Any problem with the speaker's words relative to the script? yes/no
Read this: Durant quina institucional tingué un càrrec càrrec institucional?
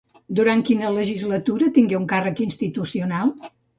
yes